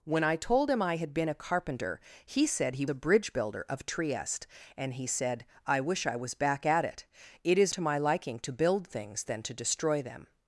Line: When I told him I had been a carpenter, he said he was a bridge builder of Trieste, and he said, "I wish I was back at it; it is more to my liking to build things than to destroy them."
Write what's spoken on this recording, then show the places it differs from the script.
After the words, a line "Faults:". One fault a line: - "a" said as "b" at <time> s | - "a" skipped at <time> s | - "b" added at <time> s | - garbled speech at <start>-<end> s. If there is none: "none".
When I told him I had been a carpenter, he said he a bridge builder of Trieste, and he said, "I wish I was back at it; it is to my liking to build things than to destroy them."
Faults:
- "was" skipped at 2.9 s
- "more" skipped at 7.7 s